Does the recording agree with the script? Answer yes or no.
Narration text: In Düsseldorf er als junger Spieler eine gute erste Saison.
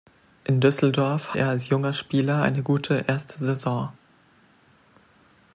yes